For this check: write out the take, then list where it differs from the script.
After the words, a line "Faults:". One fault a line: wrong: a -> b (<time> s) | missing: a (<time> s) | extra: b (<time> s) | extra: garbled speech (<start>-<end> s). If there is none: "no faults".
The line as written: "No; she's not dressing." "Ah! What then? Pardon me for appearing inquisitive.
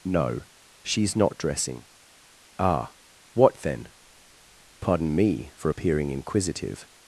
"No; she's not dressing." "Ah! What then? Pardon me for appearing inquisitive.
Faults:
no faults